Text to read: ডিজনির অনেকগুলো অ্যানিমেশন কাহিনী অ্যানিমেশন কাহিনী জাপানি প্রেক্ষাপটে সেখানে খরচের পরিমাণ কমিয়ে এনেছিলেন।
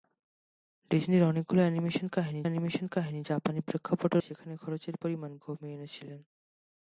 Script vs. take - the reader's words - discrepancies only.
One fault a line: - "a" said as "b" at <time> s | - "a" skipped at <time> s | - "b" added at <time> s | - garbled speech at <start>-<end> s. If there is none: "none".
none